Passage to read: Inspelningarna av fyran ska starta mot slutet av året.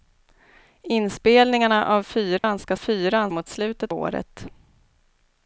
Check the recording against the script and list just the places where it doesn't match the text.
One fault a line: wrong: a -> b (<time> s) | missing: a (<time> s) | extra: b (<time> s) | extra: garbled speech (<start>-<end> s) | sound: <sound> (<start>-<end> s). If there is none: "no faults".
sound: dropout (2.4-2.4 s)
wrong: starta -> fyran (2.8 s)
missing: av (3.9 s)